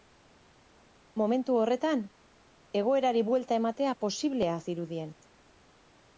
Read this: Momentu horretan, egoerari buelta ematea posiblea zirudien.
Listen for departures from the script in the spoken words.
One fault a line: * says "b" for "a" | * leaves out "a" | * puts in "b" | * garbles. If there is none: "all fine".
all fine